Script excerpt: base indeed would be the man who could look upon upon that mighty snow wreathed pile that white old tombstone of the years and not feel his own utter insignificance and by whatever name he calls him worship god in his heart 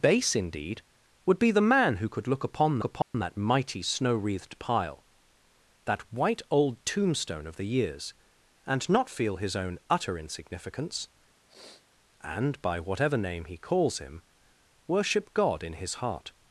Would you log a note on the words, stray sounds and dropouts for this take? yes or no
yes